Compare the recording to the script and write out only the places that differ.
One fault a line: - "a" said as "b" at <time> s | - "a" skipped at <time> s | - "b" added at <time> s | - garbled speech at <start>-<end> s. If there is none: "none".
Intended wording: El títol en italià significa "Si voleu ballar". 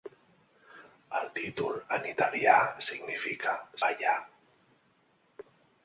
- "Si voleu" skipped at 3.5 s